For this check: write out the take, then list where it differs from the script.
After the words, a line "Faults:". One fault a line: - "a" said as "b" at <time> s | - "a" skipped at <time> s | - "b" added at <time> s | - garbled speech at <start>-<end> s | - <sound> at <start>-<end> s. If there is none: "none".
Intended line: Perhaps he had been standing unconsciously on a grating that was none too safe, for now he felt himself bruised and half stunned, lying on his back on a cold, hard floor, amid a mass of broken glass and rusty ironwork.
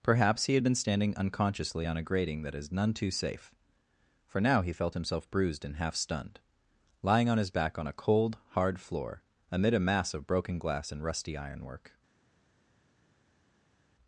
Perhaps he had been standing unconsciously on a grating that is none too safe, for now he felt himself bruised and half stunned, lying on his back on a cold, hard floor, amid a mass of broken glass and rusty ironwork.
Faults:
- "was" said as "is" at 2.5 s